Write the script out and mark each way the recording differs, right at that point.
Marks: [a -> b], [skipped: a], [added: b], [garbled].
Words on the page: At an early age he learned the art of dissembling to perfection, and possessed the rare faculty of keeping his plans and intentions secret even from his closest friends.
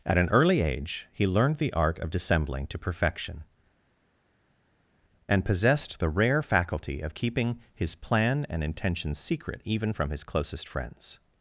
At an early age he learned the art of dissembling to perfection, and possessed the rare faculty of keeping his [plans -> plan] and intentions secret even from his closest friends.